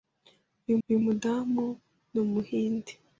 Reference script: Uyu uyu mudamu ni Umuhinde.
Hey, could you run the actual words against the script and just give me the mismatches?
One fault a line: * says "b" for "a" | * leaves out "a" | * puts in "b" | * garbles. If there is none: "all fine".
all fine